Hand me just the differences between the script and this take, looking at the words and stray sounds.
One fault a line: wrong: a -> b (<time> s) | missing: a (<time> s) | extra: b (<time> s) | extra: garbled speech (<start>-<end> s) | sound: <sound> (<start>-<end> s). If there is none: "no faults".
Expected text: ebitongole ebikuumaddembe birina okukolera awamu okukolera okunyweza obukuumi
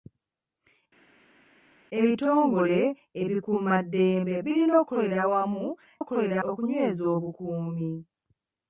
no faults